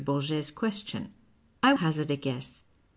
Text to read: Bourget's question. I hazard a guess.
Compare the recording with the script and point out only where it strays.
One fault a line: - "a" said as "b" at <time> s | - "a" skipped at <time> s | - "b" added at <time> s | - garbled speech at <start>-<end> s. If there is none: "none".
none